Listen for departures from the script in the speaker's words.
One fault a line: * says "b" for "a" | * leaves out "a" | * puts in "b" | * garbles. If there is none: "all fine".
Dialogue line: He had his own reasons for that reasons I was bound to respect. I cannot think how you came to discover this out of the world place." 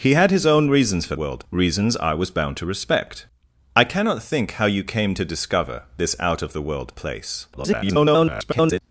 * says "world" for "that"
* garbles